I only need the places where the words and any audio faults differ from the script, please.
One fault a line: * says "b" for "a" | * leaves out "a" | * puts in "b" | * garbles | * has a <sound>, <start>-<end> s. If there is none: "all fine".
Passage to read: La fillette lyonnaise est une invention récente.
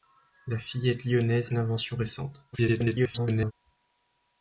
* leaves out "est"
* garbles